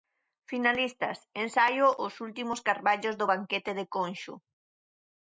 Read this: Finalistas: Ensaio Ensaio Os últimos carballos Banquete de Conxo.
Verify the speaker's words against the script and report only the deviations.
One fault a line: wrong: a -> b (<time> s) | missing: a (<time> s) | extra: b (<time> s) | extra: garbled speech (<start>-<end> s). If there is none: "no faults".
missing: Ensaio (1.9 s)
extra: do (3.2 s)